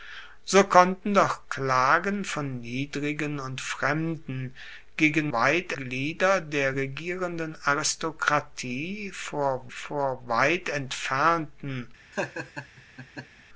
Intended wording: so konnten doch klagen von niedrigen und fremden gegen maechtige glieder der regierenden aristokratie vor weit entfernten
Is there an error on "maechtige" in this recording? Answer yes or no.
yes